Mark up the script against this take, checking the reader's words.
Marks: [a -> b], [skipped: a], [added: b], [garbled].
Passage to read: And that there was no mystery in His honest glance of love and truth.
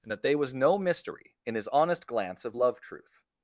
And that [there -> they] was no mystery in His honest glance of love [skipped: and] truth.